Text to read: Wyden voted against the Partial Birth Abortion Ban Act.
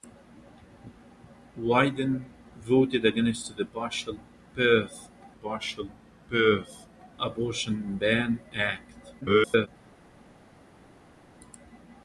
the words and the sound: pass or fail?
fail